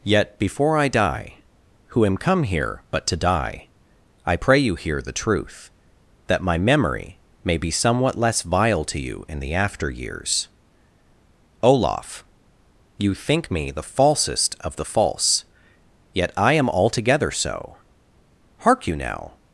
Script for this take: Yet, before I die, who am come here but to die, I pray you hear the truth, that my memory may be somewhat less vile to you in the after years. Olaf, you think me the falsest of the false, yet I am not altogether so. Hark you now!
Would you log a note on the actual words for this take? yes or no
yes